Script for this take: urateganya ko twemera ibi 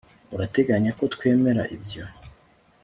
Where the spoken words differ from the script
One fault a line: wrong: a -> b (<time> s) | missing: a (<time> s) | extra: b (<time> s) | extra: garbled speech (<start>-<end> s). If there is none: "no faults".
wrong: ibi -> ibyo (1.8 s)